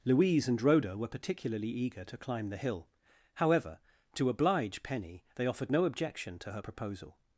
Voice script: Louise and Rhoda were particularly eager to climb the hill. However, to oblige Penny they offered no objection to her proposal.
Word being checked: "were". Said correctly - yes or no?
yes